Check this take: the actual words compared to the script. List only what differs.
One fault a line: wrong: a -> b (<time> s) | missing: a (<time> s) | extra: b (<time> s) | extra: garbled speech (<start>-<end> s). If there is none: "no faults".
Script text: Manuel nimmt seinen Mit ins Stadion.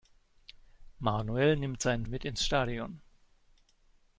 no faults